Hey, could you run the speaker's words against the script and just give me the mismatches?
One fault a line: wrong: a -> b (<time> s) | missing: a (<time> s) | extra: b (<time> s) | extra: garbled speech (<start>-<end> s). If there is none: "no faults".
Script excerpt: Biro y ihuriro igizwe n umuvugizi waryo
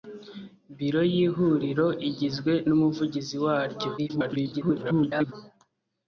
extra: garbled speech (4.0-5.3 s)